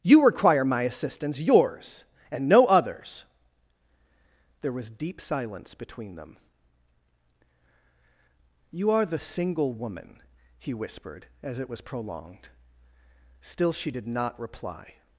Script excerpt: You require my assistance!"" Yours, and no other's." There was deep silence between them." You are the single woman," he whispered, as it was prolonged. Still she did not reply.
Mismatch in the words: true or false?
false